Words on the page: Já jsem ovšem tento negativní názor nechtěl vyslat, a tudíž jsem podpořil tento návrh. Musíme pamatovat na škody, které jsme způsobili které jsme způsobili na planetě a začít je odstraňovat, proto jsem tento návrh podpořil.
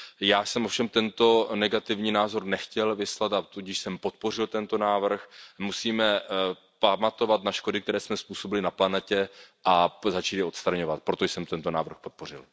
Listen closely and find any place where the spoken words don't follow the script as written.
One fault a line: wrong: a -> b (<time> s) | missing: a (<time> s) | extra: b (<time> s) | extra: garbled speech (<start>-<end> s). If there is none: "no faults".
missing: které jsme způsobili (8.6 s)